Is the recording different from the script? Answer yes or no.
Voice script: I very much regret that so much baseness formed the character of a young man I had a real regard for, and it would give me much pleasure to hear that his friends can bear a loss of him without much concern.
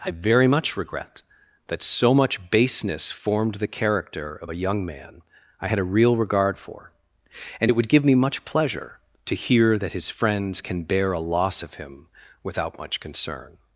no